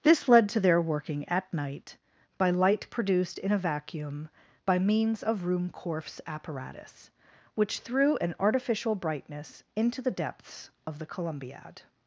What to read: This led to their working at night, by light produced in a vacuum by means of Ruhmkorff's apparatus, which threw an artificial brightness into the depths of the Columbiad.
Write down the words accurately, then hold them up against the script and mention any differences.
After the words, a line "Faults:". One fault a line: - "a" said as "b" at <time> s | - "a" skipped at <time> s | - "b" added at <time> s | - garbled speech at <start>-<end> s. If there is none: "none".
This led to their working at night, by light produced in a vacuum by means of Ruhmkorff's apparatus, which threw an artificial brightness into the depths of the Columbiad.
Faults:
none